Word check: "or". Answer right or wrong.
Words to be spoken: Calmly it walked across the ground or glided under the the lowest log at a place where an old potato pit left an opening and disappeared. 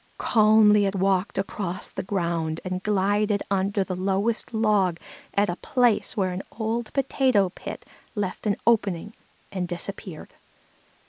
wrong